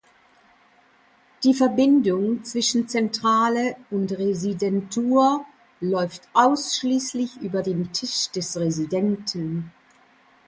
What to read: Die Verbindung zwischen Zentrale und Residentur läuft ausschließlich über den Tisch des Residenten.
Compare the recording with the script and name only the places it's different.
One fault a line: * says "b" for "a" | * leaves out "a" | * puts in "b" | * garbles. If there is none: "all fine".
all fine